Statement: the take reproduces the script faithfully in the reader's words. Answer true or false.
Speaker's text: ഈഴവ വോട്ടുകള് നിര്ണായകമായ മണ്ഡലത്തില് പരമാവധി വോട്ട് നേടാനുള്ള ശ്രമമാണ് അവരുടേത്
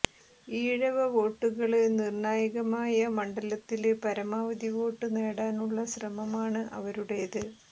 true